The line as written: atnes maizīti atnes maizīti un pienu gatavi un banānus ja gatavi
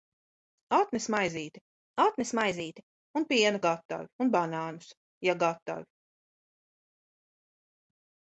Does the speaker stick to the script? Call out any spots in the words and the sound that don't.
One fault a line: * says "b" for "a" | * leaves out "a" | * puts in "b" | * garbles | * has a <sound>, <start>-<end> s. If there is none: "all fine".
all fine